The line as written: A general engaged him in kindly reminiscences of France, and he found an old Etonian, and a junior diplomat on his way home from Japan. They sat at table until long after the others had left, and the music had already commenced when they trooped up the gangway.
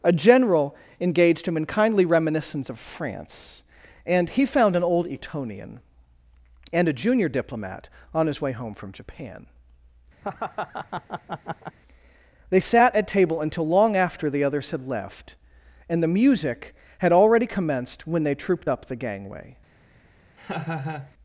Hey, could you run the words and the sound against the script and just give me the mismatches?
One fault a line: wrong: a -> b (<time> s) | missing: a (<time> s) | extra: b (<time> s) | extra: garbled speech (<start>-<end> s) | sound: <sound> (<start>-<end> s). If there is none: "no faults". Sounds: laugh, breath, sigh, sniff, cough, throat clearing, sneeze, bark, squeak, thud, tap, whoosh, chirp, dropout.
wrong: reminiscences -> reminiscence (2.0 s)
sound: laugh (10.2-11.8 s)
sound: laugh (20.4-21.1 s)